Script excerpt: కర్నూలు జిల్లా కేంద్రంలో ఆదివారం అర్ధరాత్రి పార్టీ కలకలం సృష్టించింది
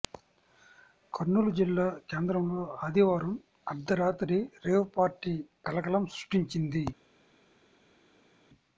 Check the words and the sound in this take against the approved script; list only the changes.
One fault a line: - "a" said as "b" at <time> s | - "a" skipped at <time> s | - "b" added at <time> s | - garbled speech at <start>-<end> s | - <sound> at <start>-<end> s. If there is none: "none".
- "రేవ్" added at 4.7 s